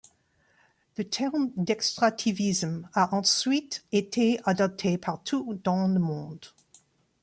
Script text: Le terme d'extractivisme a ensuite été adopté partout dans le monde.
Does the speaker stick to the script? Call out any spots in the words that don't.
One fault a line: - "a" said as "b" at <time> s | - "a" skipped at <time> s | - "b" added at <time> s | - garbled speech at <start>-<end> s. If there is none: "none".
none